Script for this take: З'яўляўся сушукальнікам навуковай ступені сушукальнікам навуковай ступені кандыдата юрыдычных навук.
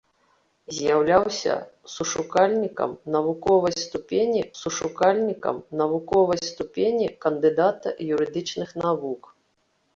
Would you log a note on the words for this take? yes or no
no